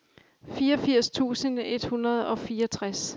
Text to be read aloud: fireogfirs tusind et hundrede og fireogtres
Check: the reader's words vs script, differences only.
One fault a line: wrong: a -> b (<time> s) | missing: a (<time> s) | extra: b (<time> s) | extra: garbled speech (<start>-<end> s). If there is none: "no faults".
no faults